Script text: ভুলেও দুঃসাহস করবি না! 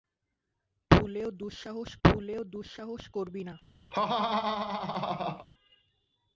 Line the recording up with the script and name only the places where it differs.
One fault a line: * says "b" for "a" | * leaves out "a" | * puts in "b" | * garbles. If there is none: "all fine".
* puts in "ভুলেও দুঃসাহস"